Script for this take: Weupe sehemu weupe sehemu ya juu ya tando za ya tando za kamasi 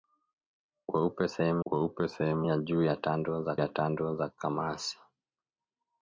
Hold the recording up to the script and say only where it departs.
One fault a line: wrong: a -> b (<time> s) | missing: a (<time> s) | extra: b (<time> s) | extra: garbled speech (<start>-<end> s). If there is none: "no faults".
no faults